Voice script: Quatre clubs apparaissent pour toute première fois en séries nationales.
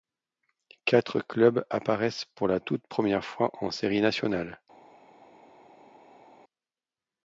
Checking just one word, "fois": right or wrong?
right